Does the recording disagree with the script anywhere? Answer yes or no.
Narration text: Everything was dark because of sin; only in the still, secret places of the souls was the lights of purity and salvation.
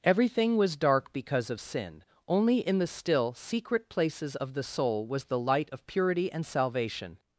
yes